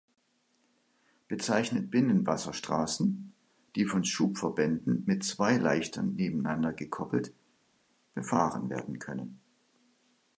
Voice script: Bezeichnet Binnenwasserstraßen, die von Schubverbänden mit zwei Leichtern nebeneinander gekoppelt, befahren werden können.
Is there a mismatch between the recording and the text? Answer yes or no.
no